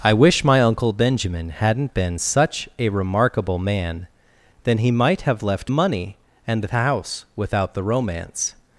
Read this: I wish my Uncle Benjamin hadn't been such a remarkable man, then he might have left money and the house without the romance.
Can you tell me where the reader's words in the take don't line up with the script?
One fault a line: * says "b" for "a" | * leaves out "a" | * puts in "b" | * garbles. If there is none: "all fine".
all fine